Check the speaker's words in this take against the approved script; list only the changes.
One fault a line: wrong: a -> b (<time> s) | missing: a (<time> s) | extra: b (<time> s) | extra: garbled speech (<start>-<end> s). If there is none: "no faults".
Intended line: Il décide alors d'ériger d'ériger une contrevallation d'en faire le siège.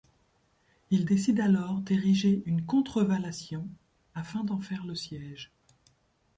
missing: d'ériger (2.4 s)
extra: afin (4.1 s)